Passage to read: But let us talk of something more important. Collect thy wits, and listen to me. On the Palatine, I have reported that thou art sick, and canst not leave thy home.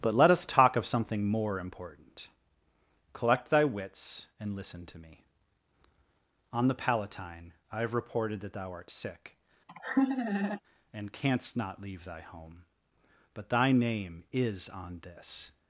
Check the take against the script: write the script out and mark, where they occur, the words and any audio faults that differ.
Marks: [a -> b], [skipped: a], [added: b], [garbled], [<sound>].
But let us talk of something more important. Collect thy wits, and listen to me. On the Palatine, I have reported that thou art sick, [laugh] and canst not leave thy home. [added: But thy name is on this]